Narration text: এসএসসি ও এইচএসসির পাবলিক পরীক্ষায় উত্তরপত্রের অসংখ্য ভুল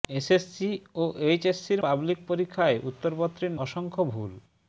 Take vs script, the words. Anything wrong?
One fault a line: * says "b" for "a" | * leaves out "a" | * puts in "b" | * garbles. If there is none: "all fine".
all fine